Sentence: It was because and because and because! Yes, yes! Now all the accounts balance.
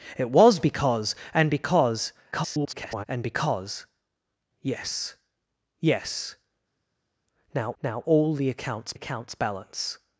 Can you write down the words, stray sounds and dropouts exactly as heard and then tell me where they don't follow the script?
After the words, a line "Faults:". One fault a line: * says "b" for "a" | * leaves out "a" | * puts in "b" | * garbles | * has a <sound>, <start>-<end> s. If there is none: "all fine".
It was because and because [garbled] and because! Yes, yes! Now now all the accounts accounts balance.
Faults:
* garbles
* puts in "now"
* puts in "accounts"